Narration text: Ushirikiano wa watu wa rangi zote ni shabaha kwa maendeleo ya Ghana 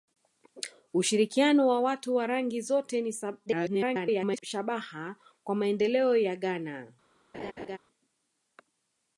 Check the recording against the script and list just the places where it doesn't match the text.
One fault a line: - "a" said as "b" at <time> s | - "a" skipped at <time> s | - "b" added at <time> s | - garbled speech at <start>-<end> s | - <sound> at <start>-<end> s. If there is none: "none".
- garbled speech at 3.5-4.4 s
- laugh at 7.3-7.8 s